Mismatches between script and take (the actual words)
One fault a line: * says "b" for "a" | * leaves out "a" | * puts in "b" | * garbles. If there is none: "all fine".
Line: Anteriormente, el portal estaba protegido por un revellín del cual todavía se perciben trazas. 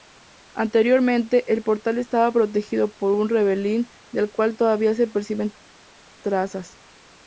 all fine